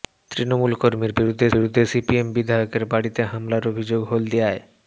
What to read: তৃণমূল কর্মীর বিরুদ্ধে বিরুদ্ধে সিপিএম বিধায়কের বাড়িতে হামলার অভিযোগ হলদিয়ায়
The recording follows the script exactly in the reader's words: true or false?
true